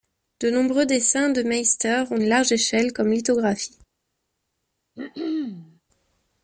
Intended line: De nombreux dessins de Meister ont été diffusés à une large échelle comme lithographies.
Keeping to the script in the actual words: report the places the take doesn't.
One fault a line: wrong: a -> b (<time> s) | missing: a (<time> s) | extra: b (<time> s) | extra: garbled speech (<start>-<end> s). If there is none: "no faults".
missing: été diffusés à (2.2 s)